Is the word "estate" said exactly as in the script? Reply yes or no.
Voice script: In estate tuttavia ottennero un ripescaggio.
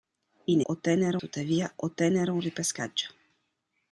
no